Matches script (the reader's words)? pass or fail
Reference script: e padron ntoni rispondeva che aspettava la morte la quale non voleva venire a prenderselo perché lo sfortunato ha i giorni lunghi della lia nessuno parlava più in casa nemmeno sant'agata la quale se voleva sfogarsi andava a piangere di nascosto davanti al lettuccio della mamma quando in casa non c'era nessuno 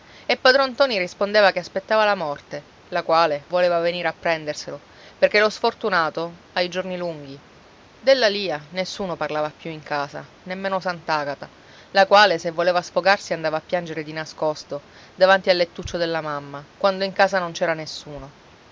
fail